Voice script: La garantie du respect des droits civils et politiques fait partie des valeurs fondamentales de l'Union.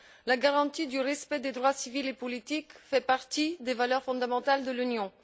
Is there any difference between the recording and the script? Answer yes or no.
no